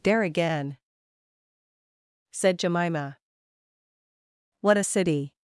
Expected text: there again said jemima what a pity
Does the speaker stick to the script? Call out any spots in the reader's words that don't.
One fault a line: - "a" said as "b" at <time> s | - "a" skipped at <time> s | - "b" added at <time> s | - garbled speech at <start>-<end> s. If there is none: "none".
- "pity" said as "city" at 4.8 s